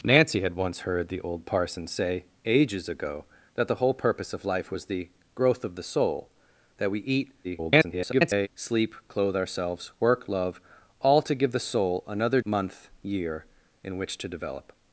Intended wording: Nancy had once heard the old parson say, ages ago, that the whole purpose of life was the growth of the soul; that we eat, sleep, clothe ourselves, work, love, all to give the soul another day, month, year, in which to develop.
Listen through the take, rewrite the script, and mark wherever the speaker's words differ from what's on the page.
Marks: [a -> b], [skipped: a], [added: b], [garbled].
Nancy had once heard the old parson say, ages ago, that the whole purpose of life was the growth of the soul; that we eat, [garbled] sleep, clothe ourselves, work, love, all to give the soul another [skipped: day,] month, year, in which to develop.